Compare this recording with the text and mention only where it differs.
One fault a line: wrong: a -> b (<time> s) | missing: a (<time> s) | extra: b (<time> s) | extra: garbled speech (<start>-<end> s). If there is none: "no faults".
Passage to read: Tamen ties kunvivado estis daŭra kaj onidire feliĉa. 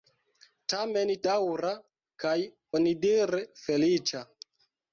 missing: ties kunvivado estis (1.1 s)